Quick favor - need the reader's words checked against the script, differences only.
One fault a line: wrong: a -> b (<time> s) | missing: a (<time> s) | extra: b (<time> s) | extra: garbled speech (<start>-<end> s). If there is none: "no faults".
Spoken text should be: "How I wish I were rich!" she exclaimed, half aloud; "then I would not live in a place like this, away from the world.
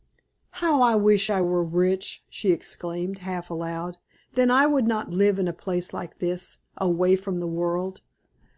no faults